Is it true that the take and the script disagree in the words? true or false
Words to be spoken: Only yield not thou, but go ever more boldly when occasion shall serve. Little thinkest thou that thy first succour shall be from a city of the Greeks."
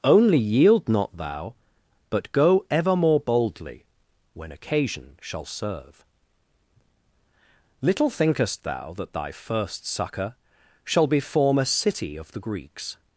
true